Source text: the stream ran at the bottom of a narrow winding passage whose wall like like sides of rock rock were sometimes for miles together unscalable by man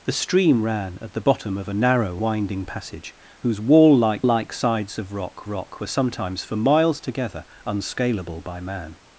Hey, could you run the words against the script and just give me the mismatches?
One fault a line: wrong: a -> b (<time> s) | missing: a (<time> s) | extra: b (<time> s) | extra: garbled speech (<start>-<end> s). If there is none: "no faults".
no faults